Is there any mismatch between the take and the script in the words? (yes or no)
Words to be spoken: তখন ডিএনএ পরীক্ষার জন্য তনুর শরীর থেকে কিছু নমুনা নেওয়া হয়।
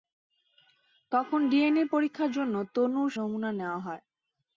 yes